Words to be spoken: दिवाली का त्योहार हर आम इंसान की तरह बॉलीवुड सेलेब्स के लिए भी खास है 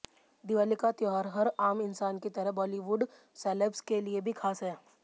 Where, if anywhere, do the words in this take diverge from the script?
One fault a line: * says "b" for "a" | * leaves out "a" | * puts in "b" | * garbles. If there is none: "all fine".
all fine